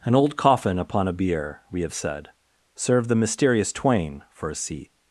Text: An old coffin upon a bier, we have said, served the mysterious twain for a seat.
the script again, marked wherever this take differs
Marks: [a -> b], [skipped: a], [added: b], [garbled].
An old coffin upon a bier, we have said, served the mysterious twain for a seat.